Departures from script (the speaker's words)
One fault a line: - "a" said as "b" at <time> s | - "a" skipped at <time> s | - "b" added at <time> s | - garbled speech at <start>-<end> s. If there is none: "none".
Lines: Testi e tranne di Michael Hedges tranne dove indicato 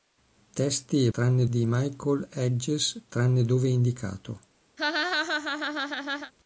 none